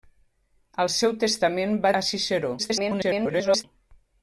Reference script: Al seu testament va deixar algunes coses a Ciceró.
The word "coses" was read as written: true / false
false